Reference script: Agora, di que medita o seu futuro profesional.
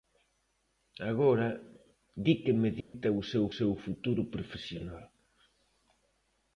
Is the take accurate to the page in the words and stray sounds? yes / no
no